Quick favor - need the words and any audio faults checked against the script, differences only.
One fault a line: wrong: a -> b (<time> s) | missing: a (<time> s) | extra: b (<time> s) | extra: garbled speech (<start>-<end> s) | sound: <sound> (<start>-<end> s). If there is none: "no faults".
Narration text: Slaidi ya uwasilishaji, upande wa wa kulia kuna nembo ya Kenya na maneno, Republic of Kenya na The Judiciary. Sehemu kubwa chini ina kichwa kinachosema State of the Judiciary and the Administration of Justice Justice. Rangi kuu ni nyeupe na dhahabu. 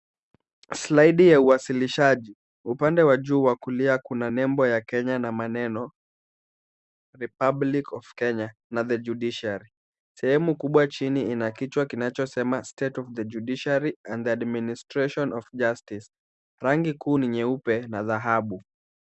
extra: juu (3.2 s)
missing: Justice (16.1 s)